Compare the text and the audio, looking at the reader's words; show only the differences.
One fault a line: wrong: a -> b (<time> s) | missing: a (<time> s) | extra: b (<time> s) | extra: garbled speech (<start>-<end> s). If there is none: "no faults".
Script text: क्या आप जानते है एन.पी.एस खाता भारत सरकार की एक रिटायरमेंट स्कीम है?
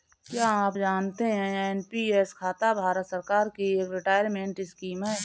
no faults